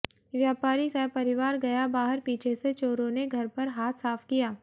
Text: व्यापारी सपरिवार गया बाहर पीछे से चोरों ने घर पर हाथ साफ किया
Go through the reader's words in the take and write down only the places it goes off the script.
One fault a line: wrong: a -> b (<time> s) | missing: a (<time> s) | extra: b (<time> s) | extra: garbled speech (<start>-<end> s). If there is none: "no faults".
no faults